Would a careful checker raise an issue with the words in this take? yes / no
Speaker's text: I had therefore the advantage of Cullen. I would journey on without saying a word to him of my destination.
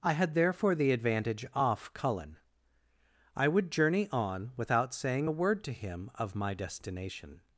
yes